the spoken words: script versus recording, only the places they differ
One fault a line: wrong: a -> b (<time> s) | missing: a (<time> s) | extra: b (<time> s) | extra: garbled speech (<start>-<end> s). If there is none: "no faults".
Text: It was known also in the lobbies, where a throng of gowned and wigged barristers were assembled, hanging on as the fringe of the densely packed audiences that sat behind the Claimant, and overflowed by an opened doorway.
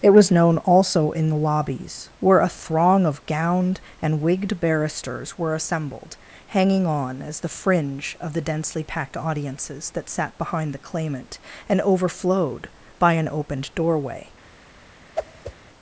no faults